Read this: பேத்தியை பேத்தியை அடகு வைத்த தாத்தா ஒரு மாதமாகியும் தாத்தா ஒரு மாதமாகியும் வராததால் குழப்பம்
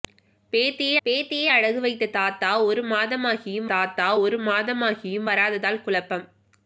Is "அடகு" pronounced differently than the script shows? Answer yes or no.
no